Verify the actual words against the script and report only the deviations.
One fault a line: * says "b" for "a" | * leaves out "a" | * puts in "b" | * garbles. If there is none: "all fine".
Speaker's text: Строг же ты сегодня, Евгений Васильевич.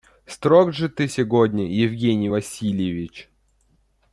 all fine